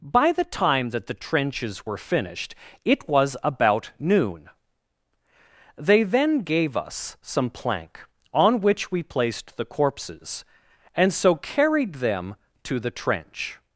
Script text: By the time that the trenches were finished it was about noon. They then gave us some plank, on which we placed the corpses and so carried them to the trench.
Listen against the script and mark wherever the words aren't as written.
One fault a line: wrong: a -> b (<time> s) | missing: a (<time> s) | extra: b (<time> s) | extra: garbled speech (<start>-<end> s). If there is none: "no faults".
no faults